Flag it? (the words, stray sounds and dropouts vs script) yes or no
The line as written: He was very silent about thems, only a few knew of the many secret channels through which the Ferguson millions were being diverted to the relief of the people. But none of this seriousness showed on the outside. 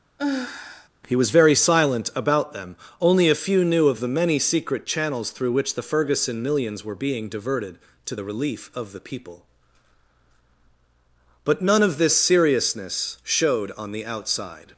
yes